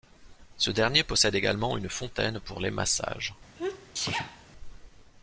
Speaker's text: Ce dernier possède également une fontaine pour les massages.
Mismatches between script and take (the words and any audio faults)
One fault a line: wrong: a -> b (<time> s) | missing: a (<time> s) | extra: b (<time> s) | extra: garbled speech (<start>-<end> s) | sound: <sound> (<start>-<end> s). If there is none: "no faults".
sound: sneeze (3.6-4.5 s)